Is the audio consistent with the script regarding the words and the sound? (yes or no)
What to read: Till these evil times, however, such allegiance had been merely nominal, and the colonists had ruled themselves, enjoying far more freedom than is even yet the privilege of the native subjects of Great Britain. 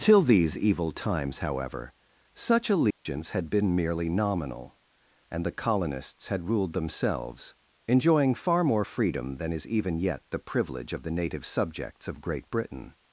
no